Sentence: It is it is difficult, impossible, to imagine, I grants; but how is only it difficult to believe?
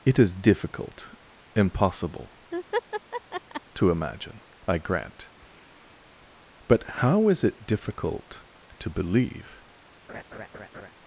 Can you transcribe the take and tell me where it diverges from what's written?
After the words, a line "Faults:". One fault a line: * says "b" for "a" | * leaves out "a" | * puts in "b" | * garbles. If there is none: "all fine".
It is difficult, impossible, to imagine, I grant; but how is it difficult to believe?
Faults:
* leaves out "it is"
* says "grant" for "grants"
* leaves out "only"